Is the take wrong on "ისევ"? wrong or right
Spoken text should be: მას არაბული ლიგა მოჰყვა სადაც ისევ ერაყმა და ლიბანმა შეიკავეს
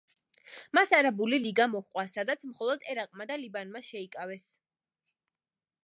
wrong